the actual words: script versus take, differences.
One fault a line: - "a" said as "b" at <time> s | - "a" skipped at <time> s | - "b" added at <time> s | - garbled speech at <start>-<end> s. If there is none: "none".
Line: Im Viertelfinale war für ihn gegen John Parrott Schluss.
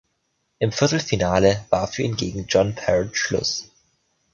none